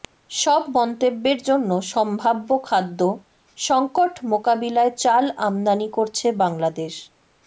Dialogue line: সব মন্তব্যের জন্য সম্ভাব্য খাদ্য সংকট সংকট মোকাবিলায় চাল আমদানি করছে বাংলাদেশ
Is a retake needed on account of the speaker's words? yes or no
yes